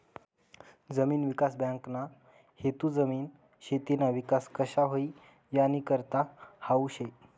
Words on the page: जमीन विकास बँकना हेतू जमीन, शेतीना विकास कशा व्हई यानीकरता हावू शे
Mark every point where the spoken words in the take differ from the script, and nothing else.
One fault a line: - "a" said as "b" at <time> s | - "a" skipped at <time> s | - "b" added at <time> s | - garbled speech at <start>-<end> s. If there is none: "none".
none